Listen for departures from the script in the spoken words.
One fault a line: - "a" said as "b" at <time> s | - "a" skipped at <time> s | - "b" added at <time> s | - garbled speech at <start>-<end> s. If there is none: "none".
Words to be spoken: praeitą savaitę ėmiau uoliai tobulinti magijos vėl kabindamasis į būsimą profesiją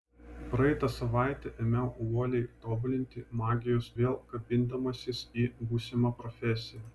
none